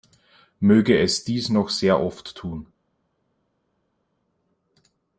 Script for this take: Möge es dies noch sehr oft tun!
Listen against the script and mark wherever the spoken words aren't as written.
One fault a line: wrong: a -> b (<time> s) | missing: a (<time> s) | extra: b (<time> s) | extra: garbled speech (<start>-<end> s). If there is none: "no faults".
no faults